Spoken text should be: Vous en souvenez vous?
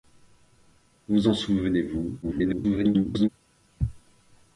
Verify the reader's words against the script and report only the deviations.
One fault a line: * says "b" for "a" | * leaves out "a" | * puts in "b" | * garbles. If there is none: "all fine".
* garbles